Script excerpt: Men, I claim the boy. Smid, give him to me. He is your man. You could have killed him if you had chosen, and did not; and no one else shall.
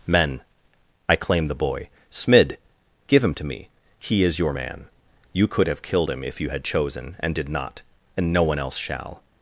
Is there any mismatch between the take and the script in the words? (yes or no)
no